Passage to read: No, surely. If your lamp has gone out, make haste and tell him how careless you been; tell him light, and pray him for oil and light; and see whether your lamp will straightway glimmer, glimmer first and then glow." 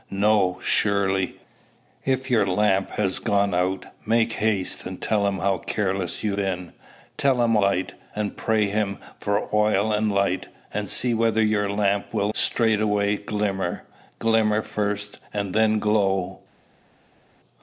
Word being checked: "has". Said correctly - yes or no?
yes